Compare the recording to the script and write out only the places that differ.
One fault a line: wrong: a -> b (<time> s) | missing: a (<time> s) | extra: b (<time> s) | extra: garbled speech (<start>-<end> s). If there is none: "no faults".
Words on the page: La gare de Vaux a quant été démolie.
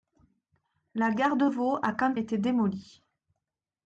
no faults